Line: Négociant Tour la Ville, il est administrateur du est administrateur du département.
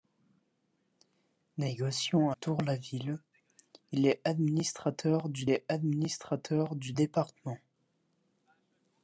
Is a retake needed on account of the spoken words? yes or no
no